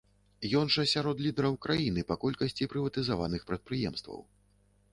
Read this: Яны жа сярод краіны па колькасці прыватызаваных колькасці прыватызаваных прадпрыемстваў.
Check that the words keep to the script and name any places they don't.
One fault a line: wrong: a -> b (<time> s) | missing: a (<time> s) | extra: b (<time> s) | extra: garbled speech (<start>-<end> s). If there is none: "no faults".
wrong: Яны -> Ён (0.6 s)
extra: лідараў (1.2 s)
missing: колькасці прыватызаваных (3.4 s)